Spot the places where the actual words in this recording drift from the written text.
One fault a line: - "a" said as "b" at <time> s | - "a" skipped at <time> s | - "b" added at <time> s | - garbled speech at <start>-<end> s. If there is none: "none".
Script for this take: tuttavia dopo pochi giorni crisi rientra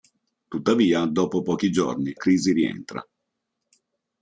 none